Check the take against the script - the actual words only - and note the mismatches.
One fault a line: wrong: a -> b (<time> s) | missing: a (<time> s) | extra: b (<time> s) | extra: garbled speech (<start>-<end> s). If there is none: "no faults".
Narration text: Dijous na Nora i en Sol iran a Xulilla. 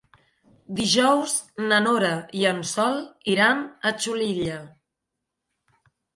no faults